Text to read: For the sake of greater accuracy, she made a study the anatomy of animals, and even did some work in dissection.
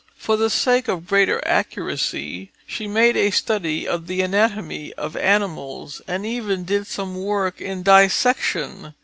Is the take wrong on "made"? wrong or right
right